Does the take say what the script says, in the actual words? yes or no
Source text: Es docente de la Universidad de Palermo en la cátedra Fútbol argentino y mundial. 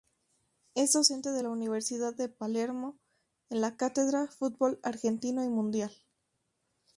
yes